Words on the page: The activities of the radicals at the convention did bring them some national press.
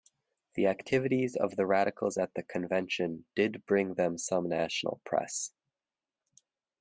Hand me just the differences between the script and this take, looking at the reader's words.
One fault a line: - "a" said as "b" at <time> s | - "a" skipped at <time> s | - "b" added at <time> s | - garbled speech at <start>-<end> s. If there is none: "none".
none